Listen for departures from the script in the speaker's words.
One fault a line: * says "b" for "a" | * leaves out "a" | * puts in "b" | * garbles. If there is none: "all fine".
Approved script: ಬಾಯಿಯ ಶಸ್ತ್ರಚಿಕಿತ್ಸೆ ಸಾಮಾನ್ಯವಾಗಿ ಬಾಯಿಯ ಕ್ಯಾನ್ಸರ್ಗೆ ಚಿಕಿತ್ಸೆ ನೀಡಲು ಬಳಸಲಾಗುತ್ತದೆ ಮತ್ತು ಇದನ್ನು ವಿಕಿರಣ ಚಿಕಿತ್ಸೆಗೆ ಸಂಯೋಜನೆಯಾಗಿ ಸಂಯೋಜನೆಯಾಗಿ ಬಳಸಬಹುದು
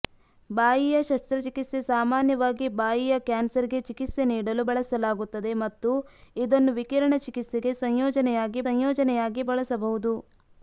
all fine